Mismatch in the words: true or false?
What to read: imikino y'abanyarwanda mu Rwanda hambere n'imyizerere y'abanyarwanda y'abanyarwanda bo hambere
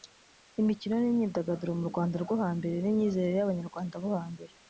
true